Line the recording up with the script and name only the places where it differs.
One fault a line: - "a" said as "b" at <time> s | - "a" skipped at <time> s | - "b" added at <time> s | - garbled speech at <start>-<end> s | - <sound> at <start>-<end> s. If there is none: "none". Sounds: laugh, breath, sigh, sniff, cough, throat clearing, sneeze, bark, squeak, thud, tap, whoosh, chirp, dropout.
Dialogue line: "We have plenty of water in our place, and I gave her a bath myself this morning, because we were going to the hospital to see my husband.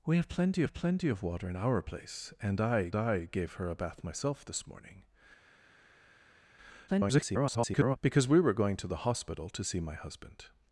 - "have plenty" added at 0.6 s
- "I" added at 2.9 s
- garbled speech at 6.9-8.0 s